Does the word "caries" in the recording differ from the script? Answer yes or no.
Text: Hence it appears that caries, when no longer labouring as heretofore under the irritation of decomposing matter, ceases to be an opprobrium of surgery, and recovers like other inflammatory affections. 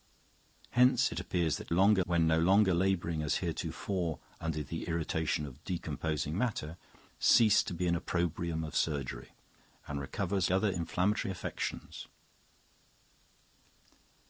yes